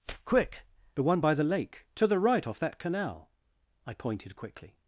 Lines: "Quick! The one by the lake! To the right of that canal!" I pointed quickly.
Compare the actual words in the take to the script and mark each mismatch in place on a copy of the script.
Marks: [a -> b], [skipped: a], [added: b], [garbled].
"Quick! The one by the lake! To the right [of -> off] that canal!" I pointed quickly.